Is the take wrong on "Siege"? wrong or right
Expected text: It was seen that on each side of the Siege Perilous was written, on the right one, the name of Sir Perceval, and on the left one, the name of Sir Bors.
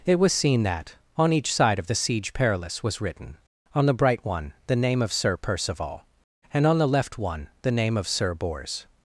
right